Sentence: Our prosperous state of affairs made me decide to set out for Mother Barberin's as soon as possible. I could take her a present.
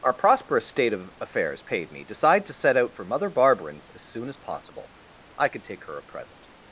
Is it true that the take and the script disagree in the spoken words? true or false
true